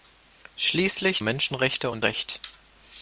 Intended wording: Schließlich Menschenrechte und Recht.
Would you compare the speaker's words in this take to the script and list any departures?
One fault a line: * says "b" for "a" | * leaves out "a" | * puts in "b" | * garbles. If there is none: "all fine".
all fine